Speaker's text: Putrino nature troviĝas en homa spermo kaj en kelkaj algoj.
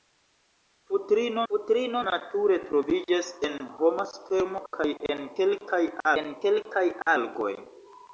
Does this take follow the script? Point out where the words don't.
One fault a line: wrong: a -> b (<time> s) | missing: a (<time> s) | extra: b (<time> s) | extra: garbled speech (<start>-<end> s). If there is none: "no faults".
extra: putrino (1.5 s)
extra: en kelkaj (6.2 s)